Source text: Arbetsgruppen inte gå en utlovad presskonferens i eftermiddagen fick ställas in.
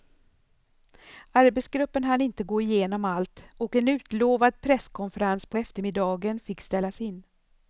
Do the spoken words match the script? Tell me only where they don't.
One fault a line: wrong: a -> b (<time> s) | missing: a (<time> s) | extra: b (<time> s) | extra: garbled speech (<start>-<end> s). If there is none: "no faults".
extra: hann (2.0 s)
extra: igenom allt och (2.6 s)
wrong: i -> på (5.5 s)